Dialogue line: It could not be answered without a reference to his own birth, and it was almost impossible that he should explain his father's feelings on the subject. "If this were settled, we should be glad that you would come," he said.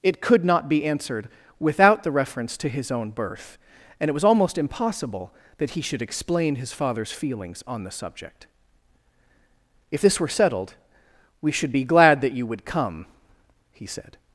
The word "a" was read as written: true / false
false